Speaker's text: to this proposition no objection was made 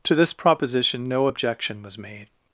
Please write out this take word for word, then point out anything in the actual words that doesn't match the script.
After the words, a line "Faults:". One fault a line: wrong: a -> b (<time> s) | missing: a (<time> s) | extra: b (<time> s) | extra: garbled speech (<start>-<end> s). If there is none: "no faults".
to this proposition no objection was made
Faults:
no faults